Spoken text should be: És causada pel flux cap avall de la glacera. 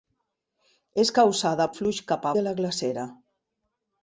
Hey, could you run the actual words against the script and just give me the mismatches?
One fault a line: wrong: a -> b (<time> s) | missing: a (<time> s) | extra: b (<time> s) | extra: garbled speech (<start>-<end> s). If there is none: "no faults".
missing: pel (1.7 s)
missing: avall (2.3 s)